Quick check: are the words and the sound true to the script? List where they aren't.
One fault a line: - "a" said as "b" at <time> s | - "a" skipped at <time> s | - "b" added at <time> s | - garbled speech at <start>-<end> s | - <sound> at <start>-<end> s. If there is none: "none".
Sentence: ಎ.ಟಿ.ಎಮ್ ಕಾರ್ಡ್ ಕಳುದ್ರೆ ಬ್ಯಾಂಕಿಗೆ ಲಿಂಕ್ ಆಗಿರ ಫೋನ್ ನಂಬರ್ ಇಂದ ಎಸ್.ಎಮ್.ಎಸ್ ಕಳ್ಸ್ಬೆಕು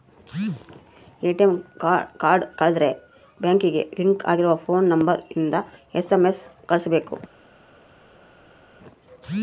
none